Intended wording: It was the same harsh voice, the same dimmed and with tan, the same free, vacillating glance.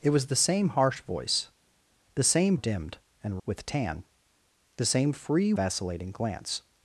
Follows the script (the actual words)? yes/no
yes